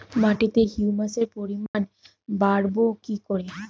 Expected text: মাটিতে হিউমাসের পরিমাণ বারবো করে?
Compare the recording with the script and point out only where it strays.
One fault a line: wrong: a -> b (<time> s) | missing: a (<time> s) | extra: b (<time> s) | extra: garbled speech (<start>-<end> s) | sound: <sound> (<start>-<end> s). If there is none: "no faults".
sound: dropout (1.7-1.7 s)
extra: কি (3.0 s)